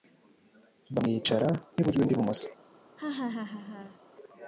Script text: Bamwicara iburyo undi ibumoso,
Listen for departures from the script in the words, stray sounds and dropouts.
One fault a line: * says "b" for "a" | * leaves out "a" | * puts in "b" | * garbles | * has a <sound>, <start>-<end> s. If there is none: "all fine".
* has a laugh, 3.0-4.0 s